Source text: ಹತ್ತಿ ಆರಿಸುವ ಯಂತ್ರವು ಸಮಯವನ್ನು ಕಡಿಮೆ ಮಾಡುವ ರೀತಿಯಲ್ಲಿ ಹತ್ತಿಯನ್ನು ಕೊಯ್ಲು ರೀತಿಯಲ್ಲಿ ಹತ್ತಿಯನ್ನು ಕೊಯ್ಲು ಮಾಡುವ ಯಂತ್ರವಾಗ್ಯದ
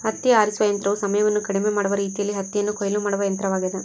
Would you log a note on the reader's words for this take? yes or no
yes